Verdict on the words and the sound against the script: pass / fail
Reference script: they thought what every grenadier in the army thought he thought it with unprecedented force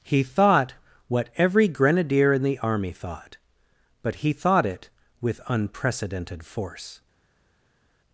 fail